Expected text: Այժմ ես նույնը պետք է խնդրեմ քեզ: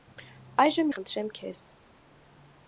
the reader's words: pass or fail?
fail